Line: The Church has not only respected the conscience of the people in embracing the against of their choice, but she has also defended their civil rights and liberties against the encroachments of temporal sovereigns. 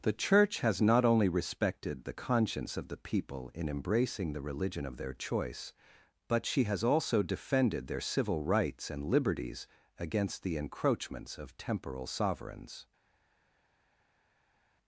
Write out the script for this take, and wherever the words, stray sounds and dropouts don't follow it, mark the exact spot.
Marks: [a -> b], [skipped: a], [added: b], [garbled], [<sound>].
The Church has not only respected the conscience of the people in embracing the [against -> religion] of their choice, but she has also defended their civil rights and liberties against the encroachments of temporal sovereigns.